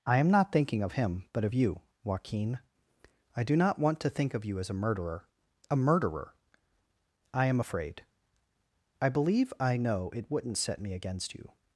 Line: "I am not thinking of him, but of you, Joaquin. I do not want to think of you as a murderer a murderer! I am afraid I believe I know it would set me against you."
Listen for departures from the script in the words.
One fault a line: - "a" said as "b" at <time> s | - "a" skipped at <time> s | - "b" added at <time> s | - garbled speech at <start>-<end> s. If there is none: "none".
- "would" said as "wouldn't" at 10.3 s